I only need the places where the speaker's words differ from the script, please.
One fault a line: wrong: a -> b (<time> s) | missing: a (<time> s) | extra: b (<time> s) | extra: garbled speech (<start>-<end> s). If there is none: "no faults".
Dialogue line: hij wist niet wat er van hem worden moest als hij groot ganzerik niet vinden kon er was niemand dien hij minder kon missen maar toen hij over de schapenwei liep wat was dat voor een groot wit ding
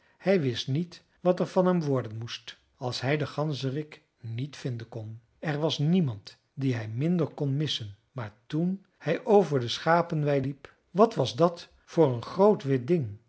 wrong: groot -> den (3.2 s)